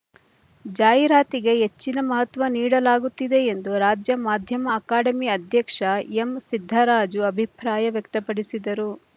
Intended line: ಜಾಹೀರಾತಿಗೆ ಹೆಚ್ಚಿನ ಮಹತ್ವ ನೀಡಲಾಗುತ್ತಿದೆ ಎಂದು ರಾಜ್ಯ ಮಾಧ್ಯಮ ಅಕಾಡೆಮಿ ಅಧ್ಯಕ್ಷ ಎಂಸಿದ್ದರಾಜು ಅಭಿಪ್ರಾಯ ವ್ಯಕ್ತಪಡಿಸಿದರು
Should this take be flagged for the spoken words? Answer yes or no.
no